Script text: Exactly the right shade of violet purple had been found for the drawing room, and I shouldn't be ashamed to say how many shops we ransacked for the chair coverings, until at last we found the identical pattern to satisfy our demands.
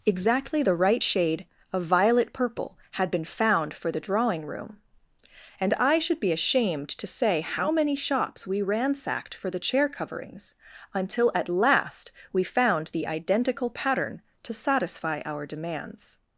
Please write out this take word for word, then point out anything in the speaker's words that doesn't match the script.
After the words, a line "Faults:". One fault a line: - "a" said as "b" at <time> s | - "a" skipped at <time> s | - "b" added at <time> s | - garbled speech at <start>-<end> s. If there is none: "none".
Exactly the right shade of violet purple had been found for the drawing room, and I should be ashamed to say how many shops we ransacked for the chair coverings, until at last we found the identical pattern to satisfy our demands.
Faults:
- "shouldn't" said as "should" at 6.0 s